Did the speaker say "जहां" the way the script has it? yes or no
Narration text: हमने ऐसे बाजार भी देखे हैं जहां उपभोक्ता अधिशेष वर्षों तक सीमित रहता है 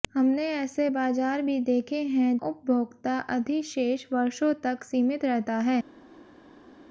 no